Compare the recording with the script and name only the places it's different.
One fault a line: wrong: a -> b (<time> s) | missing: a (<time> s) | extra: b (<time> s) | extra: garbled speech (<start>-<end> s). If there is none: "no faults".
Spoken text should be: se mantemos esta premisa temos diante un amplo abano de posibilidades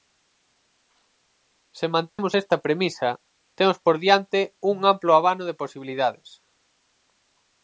extra: por (3.8 s)